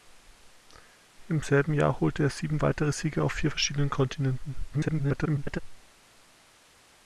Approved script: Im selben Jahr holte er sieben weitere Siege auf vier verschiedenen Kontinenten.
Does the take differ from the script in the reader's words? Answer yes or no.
yes